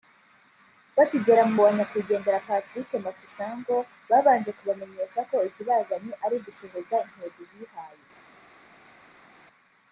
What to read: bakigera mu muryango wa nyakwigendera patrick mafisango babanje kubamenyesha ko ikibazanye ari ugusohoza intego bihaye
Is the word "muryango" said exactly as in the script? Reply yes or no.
no